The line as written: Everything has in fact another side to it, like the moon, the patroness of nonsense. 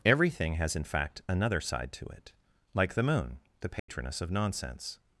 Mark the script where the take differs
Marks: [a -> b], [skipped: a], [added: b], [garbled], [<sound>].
Everything has in fact another side to it, like the moon, the patroness [dropout] of nonsense.